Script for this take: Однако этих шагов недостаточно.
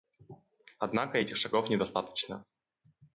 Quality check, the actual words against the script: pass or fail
pass